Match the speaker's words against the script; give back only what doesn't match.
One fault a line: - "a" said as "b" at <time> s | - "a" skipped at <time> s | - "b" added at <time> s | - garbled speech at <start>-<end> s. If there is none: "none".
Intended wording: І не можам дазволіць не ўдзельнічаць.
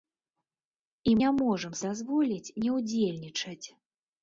none